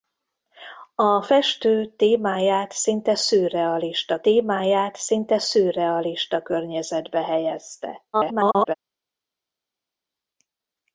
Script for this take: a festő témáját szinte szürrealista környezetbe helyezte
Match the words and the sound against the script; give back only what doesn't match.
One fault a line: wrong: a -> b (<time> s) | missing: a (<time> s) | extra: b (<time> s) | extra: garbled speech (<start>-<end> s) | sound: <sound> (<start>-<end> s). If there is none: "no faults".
extra: témáját szinte szürrealista (4.2 s)
extra: garbled speech (8.1-8.7 s)